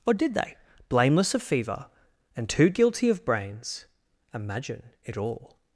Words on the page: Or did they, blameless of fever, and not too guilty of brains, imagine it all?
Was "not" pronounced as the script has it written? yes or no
no